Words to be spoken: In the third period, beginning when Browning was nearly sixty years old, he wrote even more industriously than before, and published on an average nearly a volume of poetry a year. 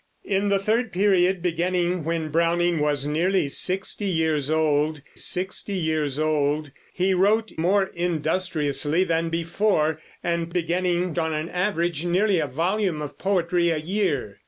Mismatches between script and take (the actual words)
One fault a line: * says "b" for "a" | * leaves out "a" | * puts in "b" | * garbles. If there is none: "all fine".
* puts in "sixty years old"
* leaves out "even"
* says "beginning" for "published"